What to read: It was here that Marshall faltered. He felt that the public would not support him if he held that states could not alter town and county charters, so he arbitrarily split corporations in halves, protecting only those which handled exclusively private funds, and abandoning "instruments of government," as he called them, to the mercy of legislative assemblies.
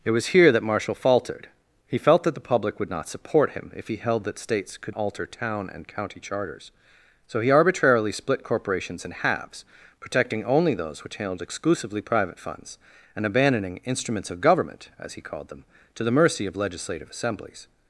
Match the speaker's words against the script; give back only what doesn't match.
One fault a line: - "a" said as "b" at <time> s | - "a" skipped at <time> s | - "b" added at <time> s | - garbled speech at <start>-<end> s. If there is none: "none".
- "not" skipped at 5.0 s